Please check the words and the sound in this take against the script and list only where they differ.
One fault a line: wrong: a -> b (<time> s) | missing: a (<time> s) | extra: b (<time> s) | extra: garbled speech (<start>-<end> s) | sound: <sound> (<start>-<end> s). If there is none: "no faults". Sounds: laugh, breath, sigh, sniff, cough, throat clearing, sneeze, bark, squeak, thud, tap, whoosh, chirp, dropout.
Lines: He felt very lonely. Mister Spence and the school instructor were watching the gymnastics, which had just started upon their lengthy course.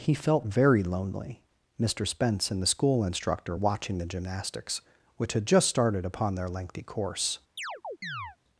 missing: were (3.5 s)
sound: chirp (7.6-8.4 s)